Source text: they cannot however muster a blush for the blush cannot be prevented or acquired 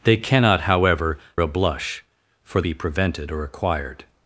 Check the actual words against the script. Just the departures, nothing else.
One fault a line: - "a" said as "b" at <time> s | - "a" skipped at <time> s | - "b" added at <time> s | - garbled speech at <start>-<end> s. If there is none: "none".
- "muster" skipped at 1.2 s
- "the blush cannot" skipped at 2.6 s